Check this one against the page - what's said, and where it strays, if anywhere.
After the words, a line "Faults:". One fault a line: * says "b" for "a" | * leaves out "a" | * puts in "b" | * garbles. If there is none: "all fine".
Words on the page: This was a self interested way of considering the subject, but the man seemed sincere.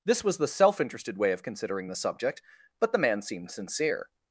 This was the self interested way of considering the subject, but the man seemed sincere.
Faults:
* says "the" for "a"